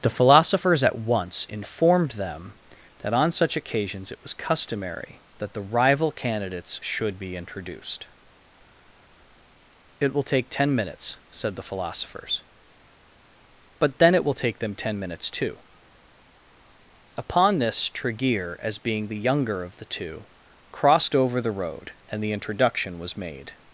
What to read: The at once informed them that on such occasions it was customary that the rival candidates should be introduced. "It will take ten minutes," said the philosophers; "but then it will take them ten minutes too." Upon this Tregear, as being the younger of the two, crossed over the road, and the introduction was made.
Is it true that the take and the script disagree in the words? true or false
true